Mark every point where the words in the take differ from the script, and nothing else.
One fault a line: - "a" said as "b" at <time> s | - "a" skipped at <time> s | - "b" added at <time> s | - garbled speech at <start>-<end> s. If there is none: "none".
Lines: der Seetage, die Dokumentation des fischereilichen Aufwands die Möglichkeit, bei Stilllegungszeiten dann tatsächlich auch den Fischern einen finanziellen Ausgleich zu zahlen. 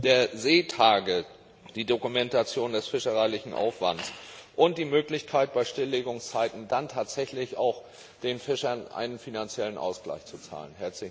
- "und" added at 4.6 s